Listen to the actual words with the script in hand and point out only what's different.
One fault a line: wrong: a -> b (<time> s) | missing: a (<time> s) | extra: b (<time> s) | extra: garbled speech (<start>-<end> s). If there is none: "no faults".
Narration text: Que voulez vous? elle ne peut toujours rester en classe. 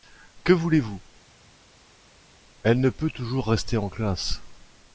no faults